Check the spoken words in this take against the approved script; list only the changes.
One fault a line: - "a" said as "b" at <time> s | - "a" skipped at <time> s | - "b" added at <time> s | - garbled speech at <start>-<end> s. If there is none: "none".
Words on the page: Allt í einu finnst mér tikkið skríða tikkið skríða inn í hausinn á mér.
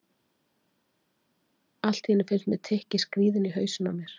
- "tikkið skríða" skipped at 3.4 s